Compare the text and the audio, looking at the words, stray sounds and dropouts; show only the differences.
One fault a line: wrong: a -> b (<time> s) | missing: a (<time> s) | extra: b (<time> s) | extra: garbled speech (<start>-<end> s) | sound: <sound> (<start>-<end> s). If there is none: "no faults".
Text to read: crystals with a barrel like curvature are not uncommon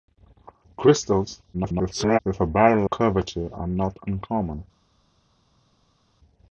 extra: garbled speech (1.5-2.2 s)
missing: like (2.8 s)